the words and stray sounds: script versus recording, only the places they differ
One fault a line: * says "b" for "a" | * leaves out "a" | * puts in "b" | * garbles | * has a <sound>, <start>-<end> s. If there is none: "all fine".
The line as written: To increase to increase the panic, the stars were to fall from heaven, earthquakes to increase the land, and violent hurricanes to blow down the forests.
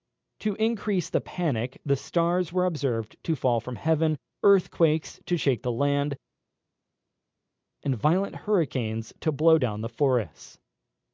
* leaves out "to increase"
* puts in "observed"
* says "shake" for "increase"